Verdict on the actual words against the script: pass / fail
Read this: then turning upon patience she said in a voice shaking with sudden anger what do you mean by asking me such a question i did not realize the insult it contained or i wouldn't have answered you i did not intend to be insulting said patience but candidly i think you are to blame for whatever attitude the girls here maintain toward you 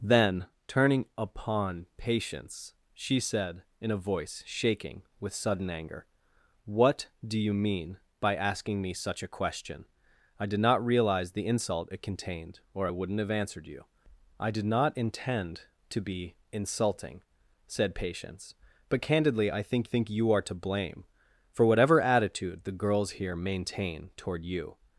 fail